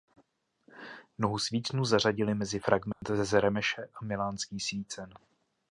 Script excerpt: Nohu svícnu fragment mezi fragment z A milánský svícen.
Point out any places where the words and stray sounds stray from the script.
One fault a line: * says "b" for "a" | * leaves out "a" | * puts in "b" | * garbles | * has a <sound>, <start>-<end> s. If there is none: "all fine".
* says "zařadili" for "fragment"
* has a dropout, 2.9-3.0 s
* puts in "Remeše"